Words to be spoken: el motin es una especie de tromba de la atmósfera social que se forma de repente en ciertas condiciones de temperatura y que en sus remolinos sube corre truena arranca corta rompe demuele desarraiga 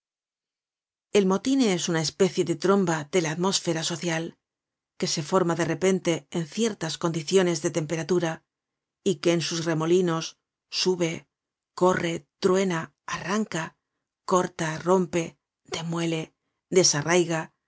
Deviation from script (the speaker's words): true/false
false